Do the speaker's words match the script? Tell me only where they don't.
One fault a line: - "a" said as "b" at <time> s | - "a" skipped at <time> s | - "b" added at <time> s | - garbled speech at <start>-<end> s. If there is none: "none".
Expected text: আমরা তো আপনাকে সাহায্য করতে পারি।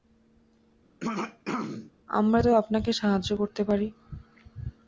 none